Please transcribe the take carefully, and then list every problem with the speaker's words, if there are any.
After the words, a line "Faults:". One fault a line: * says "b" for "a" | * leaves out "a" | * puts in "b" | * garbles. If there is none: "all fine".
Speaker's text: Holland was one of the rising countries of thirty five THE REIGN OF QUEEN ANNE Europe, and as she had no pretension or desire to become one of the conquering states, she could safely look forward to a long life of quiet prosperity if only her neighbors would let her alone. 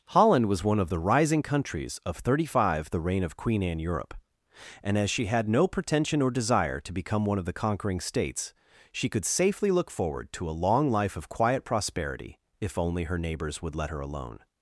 Holland was one of the rising countries of thirty five THE REIGN OF QUEEN ANNE Europe, and as she had no pretension or desire to become one of the conquering states, she could safely look forward to a long life of quiet prosperity if only her neighbors would let her alone.
Faults:
all fine